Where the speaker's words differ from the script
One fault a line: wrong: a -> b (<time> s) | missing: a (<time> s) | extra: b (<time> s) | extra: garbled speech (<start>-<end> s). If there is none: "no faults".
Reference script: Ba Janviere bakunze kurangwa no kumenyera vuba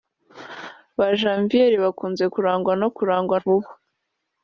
wrong: kumenyera -> kurangwa (3.0 s)